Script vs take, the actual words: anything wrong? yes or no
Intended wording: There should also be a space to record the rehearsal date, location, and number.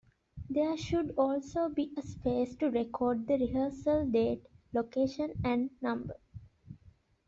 no